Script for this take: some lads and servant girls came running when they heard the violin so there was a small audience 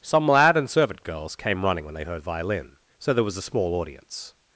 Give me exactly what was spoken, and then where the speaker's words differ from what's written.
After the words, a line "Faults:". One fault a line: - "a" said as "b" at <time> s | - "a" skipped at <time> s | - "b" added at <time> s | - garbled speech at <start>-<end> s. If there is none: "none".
some lad and servant girls came running when they heard violin so there was a small audience
Faults:
- "lads" said as "lad" at 0.3 s
- "the" skipped at 2.2 s